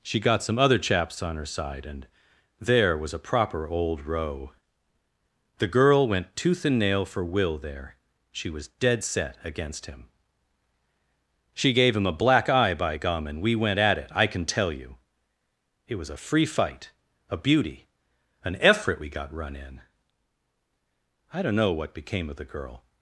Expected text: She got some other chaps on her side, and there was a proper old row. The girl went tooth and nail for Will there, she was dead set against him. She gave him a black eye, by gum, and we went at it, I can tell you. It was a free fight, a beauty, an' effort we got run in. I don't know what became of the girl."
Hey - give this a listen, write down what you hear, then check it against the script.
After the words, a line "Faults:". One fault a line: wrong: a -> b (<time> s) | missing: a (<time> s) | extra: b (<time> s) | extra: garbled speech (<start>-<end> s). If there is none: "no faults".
She got some other chaps on her side, and there was a proper old row. The girl went tooth and nail for Will there, she was dead set against him. She gave him a black eye, by gum, and we went at it, I can tell you. It was a free fight, a beauty, an' effort we got run in. I don't know what became of the girl."
Faults:
no faults